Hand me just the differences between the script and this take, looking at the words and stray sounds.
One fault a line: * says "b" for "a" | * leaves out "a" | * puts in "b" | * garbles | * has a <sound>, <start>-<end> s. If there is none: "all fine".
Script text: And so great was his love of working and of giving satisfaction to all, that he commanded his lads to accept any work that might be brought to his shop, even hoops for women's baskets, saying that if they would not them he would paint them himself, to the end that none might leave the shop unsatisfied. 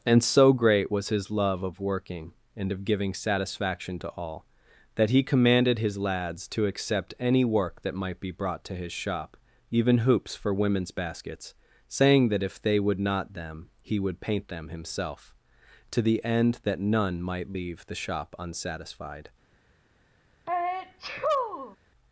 * has a sneeze, 20.5-21.8 s